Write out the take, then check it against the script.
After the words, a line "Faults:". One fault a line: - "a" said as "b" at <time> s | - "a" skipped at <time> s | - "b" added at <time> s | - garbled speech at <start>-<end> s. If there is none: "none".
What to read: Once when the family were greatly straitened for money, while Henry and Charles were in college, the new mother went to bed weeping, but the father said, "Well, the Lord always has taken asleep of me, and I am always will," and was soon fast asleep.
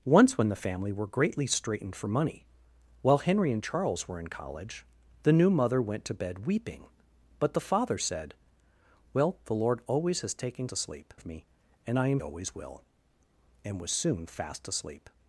Once when the family were greatly straitened for money, while Henry and Charles were in college, the new mother went to bed weeping, but the father said, "Well, the Lord always has taken asleep of me, and I am always will," and was soon fast asleep.
Faults:
none